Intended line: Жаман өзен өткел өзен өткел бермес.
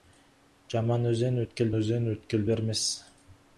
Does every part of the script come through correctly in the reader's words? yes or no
yes